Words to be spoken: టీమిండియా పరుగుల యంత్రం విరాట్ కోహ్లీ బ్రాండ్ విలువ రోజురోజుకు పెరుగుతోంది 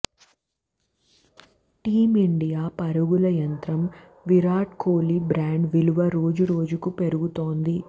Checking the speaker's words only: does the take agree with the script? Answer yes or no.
yes